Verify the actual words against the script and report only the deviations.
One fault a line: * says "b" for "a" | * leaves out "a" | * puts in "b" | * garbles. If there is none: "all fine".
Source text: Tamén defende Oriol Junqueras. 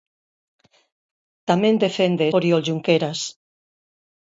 all fine